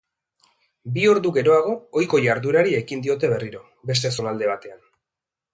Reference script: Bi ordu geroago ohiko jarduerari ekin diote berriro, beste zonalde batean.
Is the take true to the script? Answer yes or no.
yes